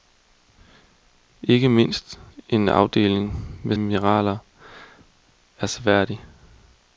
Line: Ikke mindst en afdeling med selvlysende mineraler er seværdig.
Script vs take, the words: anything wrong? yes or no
yes